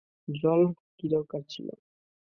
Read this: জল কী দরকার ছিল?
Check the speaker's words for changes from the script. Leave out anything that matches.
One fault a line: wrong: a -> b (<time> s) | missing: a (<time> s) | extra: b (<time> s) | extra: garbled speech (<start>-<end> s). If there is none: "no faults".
no faults